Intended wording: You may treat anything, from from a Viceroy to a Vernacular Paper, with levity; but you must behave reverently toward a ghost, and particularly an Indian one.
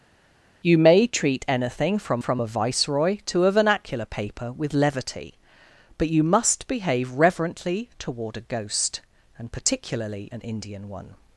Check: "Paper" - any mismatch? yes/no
no